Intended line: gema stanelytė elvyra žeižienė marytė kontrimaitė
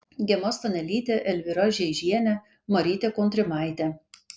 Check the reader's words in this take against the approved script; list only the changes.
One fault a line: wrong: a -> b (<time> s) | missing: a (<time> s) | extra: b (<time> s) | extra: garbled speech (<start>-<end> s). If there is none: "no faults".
no faults